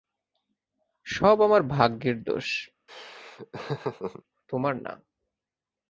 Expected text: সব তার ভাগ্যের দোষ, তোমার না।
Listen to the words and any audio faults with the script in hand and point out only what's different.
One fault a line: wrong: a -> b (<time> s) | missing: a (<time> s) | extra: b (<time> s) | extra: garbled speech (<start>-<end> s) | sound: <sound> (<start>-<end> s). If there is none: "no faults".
wrong: তার -> আমার (1.4 s)
sound: laugh (2.9-4.2 s)